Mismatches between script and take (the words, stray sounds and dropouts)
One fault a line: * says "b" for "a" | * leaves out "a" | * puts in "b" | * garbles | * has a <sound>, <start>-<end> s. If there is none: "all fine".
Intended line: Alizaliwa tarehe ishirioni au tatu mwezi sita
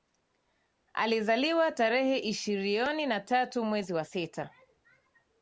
* says "na" for "au"
* puts in "wa"